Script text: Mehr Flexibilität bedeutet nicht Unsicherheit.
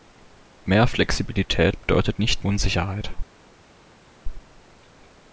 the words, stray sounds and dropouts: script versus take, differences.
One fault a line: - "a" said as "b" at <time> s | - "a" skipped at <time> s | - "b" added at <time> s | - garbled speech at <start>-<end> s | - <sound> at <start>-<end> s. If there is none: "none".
none